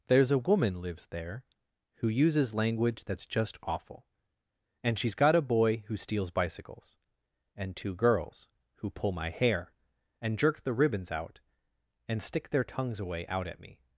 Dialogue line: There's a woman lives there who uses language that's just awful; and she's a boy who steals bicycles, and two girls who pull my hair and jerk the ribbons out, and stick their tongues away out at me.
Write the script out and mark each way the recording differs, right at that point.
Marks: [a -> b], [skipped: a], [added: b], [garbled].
There's a woman lives there who uses language that's just awful; and she's [added: got] a boy who steals bicycles, and two girls who pull my hair and jerk the ribbons out, and stick their tongues away out at me.